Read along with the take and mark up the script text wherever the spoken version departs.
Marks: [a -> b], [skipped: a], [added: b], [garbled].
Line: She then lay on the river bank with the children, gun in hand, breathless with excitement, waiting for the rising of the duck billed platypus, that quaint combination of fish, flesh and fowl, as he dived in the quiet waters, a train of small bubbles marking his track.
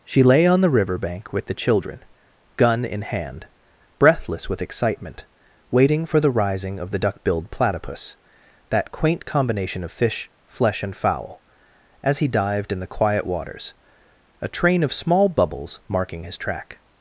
She [skipped: then] lay on the river bank with the children, gun in hand, breathless with excitement, waiting for the rising of the duck billed platypus, that quaint combination of fish, flesh and fowl, as he dived in the quiet waters, a train of small bubbles marking his track.